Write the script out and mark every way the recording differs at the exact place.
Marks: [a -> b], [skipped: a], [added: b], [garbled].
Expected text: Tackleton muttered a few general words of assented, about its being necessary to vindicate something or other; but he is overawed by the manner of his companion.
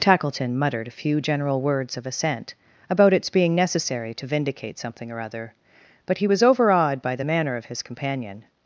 Tackleton muttered a few general words of [assented, -> assent] about its being necessary to vindicate something or other; but he [is -> was] overawed by the manner of his companion.